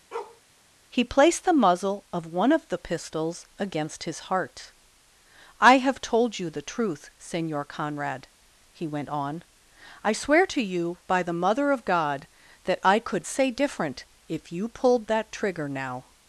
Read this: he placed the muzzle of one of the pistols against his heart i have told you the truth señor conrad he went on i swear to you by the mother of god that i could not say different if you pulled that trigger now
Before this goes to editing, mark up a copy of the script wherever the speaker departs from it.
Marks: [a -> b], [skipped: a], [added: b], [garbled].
he placed the muzzle of one of the pistols against his heart i have told you the truth señor conrad he went on i swear to you by the mother of god that i could [skipped: not] say different if you pulled that trigger now